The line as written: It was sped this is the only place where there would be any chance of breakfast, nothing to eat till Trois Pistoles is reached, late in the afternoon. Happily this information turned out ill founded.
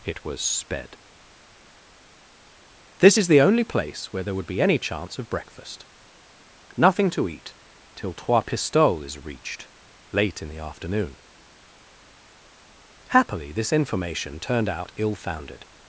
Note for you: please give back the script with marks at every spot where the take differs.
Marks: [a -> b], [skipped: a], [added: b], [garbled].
It was sped this is the only place where there would be any chance of breakfast, nothing to eat till Trois Pistoles is reached, late in the afternoon. Happily this information turned out ill founded.